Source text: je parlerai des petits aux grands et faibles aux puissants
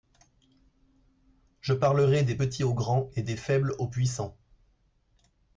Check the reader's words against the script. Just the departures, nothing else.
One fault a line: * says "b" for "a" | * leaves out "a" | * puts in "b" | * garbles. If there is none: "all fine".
* puts in "des"